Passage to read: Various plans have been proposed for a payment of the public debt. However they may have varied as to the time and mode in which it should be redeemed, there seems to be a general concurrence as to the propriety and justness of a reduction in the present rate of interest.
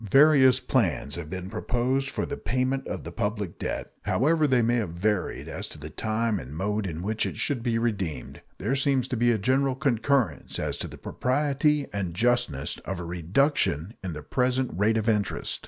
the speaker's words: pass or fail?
fail